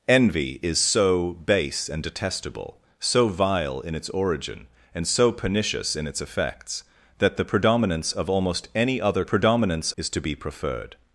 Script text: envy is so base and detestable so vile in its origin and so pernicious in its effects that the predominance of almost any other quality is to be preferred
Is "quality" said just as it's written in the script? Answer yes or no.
no